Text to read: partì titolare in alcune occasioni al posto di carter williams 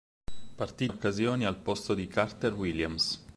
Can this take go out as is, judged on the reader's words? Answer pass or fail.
fail